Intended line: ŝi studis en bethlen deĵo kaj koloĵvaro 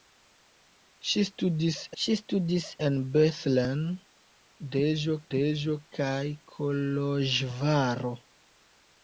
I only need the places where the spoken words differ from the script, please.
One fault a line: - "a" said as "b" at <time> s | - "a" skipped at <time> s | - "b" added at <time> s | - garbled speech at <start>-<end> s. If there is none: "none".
- "ŝi studis" added at 2.0 s
- "deĵo" added at 5.3 s